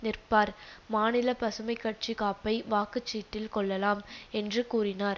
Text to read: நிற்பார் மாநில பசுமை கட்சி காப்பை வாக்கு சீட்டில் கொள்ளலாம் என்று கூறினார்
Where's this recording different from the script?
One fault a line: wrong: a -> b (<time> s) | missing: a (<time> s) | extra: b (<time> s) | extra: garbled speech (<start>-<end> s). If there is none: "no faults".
no faults